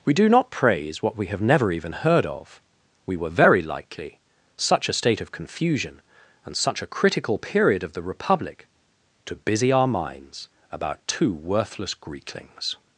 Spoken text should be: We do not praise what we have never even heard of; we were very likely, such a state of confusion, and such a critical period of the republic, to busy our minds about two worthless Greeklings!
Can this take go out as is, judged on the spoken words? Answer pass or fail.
pass